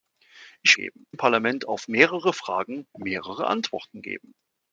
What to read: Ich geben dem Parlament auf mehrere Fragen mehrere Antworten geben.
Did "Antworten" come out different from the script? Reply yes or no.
no